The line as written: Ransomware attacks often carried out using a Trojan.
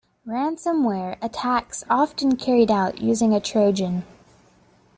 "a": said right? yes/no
yes